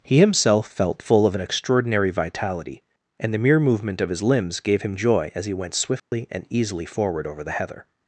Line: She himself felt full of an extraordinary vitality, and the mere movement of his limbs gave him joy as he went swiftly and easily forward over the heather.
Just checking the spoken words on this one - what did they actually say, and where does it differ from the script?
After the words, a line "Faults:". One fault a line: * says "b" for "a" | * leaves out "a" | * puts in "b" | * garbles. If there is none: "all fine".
He himself felt full of an extraordinary vitality, and the mere movement of his limbs gave him joy as he went swiftly and easily forward over the heather.
Faults:
* says "He" for "She"